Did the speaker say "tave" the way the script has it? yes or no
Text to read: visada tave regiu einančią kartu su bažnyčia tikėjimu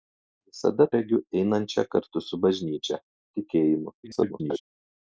no